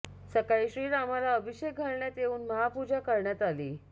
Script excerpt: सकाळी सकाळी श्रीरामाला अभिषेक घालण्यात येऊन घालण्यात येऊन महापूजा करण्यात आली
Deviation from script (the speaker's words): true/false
true